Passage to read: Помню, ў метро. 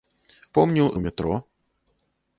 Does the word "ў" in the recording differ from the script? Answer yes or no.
no